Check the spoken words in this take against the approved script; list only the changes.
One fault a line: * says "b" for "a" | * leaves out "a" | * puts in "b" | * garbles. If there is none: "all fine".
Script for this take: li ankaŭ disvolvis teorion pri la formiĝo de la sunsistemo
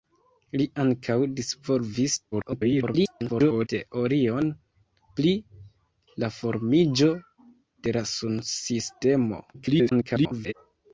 * garbles
* garbles